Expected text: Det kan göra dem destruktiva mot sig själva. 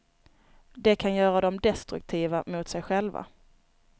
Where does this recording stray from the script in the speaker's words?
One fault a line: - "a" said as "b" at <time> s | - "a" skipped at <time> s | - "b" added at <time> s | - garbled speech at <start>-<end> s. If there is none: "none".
none